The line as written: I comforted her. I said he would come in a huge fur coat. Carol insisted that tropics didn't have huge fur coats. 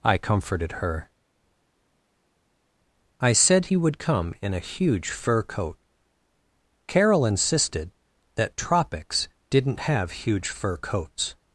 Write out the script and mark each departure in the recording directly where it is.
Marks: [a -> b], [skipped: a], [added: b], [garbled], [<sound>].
I comforted her. I said he would come in a huge fur coat. Carol insisted that tropics didn't have huge fur coats.